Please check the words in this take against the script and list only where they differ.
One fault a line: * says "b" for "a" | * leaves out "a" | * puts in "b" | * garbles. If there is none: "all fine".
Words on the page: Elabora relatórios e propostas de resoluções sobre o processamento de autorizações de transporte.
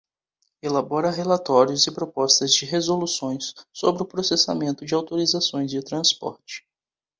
all fine